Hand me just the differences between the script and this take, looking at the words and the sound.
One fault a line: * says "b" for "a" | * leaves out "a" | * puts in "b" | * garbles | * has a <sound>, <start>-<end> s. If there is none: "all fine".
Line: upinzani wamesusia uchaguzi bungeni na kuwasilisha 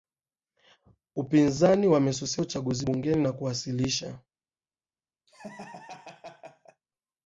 * has a laugh, 5.3-6.8 s